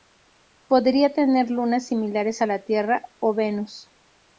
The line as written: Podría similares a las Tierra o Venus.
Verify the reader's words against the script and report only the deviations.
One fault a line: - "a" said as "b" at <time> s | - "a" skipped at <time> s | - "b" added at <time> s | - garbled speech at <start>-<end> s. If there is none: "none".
- "tener lunas" added at 1.1 s
- "las" said as "la" at 2.4 s